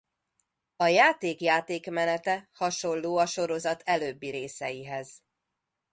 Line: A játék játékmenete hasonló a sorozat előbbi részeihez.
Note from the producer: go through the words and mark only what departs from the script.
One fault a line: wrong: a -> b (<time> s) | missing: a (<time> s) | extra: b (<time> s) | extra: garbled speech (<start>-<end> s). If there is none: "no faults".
no faults